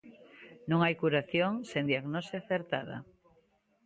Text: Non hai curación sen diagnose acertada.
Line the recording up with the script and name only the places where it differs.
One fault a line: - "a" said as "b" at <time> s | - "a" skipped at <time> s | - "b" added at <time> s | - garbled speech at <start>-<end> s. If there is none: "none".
none